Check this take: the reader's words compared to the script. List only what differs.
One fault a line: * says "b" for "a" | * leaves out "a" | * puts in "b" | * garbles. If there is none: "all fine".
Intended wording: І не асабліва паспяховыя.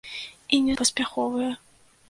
* leaves out "асабліва"